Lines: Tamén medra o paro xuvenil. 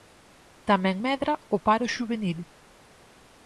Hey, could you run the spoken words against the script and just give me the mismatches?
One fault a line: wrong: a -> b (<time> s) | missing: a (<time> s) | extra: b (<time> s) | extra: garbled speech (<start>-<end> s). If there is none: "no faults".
no faults